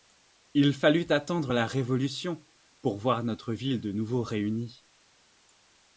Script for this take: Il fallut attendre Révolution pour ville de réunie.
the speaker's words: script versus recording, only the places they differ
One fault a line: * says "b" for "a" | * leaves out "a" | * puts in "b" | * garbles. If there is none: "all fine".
* puts in "la"
* puts in "voir notre"
* puts in "nouveau"